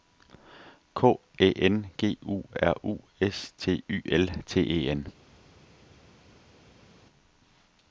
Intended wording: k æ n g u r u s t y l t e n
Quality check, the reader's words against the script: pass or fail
pass